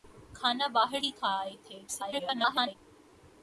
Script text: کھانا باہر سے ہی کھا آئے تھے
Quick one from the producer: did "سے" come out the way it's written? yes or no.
no